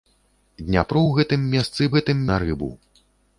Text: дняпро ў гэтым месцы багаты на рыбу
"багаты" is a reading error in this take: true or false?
true